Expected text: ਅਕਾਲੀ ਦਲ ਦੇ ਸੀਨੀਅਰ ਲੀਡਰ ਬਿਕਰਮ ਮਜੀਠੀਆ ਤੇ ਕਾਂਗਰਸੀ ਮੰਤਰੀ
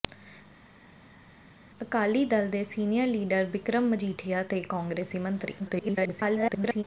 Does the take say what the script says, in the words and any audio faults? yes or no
no